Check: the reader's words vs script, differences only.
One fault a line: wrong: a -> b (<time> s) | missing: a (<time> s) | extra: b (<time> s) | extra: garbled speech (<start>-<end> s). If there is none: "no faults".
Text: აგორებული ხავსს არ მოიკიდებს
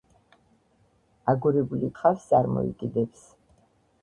no faults